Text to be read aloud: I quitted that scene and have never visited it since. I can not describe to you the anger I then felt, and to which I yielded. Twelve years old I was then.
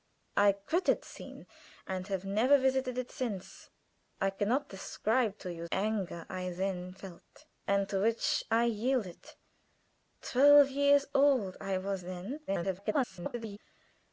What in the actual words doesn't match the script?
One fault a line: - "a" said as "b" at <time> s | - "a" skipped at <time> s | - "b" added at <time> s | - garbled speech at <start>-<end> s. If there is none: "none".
- "that" skipped at 1.1 s
- "the" skipped at 5.7 s
- garbled speech at 12.5-13.6 s